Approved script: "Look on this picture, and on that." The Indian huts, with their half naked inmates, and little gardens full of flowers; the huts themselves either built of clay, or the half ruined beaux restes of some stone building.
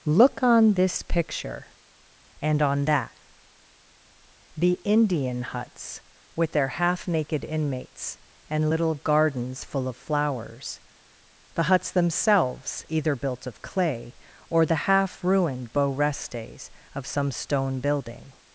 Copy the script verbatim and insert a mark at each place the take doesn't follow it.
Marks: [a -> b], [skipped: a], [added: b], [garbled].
"Look on this picture, and on that." The Indian huts, with their half naked inmates, and little gardens full of flowers; the huts themselves either built of clay, or the half ruined beaux restes of some stone building.